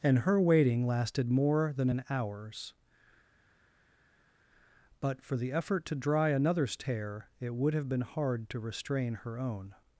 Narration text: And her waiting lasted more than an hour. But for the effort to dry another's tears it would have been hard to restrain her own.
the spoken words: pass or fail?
fail